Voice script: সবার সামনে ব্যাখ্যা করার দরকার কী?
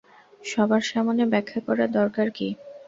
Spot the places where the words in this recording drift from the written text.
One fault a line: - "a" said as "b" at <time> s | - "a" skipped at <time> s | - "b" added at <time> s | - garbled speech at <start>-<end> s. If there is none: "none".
none